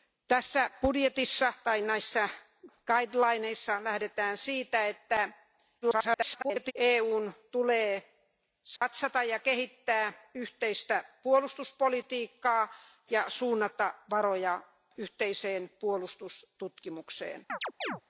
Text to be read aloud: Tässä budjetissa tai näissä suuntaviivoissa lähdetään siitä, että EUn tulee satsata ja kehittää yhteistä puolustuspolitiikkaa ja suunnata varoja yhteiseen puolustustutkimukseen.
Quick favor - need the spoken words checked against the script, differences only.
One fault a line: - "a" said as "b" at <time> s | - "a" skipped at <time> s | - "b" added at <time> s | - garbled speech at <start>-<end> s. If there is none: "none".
- garbled speech at 5.8-6.7 s